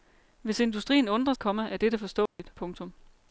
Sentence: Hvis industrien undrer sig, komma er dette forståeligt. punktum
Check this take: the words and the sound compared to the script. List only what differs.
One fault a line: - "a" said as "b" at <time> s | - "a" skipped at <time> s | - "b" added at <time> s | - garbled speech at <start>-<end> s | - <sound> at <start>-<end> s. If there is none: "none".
- "sig" skipped at 1.3 s
- dropout at 2.3-2.4 s